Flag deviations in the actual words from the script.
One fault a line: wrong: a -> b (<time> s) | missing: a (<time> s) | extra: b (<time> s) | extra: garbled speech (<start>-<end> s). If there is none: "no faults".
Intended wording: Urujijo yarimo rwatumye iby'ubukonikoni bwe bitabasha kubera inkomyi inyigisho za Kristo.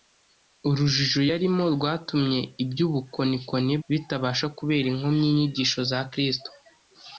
missing: bwe (3.7 s)